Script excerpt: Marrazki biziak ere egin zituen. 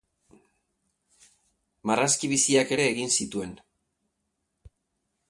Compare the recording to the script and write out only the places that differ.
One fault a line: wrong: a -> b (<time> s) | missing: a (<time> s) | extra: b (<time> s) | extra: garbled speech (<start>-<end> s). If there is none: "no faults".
no faults